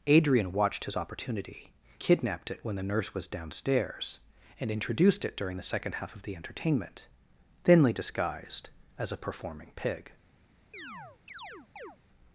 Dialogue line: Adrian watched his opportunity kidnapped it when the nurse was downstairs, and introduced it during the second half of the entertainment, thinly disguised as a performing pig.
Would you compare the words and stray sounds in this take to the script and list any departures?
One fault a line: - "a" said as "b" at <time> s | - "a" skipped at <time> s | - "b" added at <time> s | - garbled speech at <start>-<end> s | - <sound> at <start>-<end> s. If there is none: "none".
- chirp at 10.7-12.0 s